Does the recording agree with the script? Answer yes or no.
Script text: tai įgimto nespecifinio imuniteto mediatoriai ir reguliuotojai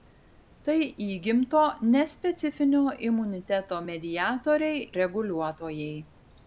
no